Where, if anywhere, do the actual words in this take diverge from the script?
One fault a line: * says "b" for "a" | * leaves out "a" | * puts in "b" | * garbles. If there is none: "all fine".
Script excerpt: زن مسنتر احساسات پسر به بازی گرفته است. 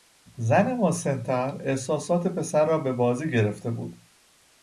* puts in "را"
* says "بود" for "است"